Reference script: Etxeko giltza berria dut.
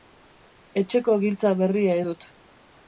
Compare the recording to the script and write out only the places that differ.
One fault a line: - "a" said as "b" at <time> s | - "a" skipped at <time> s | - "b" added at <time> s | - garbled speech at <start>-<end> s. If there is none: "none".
none